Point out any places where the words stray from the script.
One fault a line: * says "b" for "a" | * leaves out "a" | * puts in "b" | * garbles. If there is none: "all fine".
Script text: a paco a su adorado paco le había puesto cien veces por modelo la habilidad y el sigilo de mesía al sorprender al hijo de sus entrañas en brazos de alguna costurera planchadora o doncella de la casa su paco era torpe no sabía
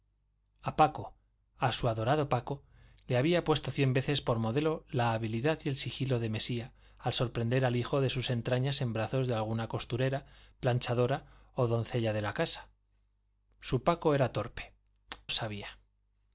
* leaves out "no"